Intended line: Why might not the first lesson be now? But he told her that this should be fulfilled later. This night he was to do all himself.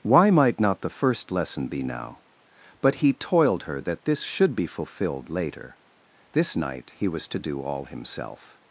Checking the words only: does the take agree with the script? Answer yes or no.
no